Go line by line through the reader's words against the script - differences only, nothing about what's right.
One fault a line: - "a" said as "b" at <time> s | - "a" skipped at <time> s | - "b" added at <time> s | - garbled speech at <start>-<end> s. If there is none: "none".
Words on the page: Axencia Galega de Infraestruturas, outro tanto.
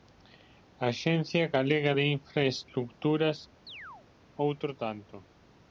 none